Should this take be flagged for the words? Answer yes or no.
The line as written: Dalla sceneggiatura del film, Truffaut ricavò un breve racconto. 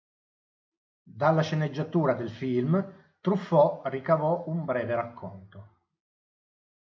no